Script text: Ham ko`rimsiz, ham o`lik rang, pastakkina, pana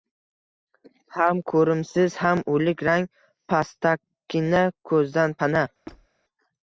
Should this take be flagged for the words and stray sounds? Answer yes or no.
yes